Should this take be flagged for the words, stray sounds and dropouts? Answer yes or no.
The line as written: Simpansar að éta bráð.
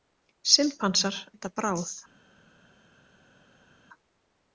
yes